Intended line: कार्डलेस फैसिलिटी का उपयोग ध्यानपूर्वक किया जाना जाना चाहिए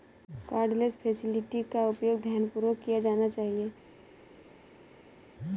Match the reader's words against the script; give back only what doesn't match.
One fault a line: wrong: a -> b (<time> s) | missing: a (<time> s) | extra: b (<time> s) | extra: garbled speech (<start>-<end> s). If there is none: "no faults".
missing: जाना (3.3 s)